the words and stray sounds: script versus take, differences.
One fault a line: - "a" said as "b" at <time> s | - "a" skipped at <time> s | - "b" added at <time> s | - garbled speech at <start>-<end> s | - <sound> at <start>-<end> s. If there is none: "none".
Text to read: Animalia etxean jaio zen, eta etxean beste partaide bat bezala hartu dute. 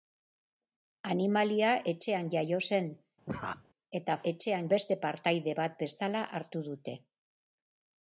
- laugh at 3.3-3.6 s